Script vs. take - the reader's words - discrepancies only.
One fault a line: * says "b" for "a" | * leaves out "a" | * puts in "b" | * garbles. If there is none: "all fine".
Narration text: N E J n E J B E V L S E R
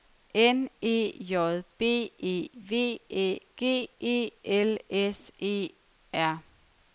* says "B" for "n"
* says "V Æ G" for "J B"
* leaves out "V"